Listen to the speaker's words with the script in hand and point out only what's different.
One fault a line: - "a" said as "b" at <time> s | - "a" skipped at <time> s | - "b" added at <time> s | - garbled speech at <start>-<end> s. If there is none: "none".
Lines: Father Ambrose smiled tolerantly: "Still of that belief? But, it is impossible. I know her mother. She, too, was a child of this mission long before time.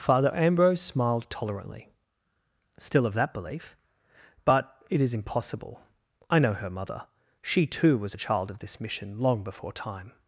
none